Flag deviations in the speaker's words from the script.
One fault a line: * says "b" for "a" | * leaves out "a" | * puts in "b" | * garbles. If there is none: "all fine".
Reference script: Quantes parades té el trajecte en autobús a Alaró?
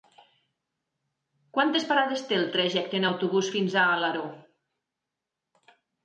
* puts in "fins"